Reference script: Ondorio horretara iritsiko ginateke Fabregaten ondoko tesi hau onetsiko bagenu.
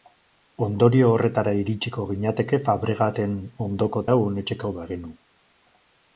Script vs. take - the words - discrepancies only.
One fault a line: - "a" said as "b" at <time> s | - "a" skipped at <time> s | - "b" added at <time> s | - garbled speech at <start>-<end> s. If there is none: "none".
- "tesi" skipped at 4.1 s